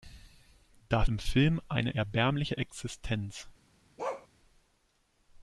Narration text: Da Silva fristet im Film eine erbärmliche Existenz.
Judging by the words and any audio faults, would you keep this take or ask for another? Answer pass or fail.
fail